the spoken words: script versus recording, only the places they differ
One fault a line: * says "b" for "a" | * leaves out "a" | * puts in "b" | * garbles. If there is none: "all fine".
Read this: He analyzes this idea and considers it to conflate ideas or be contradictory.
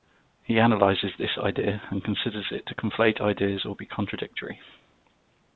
all fine